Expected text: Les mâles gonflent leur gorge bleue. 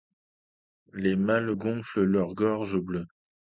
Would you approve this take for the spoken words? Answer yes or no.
yes